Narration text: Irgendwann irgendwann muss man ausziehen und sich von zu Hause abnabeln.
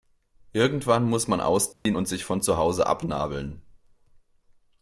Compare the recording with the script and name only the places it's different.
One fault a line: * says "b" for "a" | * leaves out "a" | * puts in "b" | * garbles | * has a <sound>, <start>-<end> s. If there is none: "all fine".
* leaves out "irgendwann"
* has a dropout, 1.7-1.9 s